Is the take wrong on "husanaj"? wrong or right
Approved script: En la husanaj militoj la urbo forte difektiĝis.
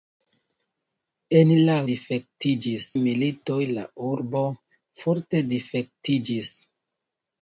wrong